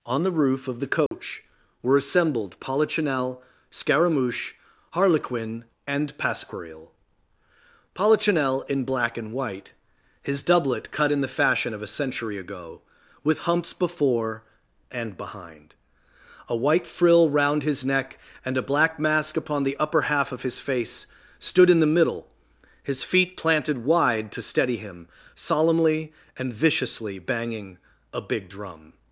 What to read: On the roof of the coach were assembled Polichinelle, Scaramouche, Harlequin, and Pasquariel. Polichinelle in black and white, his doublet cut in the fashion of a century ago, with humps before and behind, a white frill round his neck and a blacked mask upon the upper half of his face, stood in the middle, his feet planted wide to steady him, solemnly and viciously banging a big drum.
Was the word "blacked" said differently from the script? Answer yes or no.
yes